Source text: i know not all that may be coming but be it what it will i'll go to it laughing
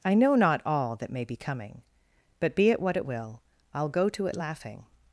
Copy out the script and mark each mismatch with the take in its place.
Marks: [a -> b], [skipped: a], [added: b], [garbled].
i know not all that may be coming but be it what it will i'll go to it laughing